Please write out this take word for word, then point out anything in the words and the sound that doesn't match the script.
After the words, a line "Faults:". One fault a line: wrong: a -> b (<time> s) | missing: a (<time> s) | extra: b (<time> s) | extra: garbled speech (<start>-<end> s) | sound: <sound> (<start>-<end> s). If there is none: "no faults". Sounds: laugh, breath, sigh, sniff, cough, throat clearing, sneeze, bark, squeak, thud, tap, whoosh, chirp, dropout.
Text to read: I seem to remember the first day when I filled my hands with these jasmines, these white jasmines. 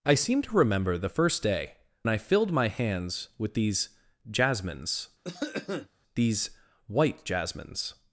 I seem to remember the first day I filled my hands with these jasmines, these white jasmines.
Faults:
missing: when (1.8 s)
sound: cough (5.2-5.9 s)